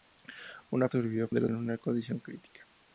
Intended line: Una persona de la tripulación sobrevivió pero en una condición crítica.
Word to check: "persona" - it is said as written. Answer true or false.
false